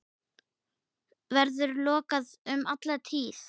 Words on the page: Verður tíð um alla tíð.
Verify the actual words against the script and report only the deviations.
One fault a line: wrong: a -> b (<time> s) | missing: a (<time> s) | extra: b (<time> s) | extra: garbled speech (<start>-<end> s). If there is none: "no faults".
wrong: tíð -> lokaður (1.9 s)